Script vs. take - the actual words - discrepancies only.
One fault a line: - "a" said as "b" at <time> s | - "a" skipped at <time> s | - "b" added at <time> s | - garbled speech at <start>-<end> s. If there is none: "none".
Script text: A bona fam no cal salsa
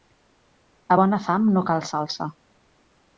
none